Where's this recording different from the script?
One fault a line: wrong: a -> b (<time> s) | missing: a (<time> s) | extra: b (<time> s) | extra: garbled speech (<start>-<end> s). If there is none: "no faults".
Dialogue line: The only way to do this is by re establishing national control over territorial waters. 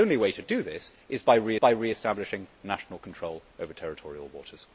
extra: by re (1.6 s)